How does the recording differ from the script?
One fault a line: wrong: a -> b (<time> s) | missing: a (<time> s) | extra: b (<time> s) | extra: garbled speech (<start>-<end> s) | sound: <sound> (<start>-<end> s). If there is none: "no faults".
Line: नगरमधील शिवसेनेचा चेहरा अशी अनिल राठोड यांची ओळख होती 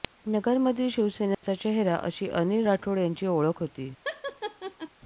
sound: dropout (1.3-1.4 s)
sound: laugh (4.0-4.9 s)